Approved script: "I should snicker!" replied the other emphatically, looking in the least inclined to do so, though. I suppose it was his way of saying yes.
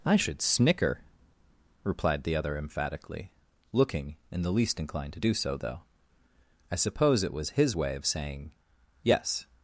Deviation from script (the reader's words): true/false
false